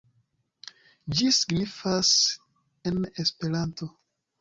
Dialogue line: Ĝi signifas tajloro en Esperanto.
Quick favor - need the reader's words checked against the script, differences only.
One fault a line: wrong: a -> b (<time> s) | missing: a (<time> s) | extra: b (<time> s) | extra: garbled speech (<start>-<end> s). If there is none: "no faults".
missing: tajloro (2.1 s)